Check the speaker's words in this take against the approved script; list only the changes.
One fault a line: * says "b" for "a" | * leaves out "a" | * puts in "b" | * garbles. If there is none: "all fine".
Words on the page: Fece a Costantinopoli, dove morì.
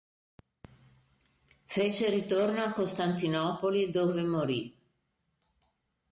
* puts in "ritorno"